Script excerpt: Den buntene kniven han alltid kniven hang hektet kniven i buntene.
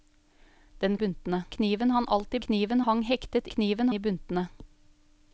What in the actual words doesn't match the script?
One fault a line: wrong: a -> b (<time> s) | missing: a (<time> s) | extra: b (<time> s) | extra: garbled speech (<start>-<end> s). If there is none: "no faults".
no faults